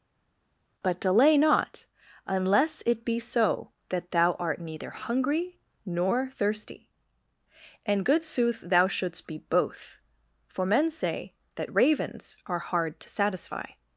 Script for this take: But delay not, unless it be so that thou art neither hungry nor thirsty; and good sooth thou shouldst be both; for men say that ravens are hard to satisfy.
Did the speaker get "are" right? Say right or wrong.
right